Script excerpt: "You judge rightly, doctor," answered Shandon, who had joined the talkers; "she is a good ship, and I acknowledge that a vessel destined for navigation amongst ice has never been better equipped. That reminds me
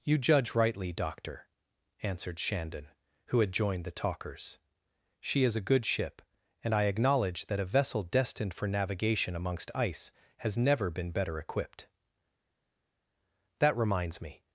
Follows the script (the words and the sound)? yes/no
yes